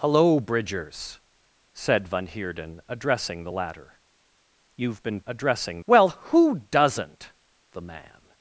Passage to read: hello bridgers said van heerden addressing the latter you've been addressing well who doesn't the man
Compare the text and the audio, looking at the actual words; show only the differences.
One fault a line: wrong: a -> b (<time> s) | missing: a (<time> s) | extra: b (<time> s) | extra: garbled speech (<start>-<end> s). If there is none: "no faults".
no faults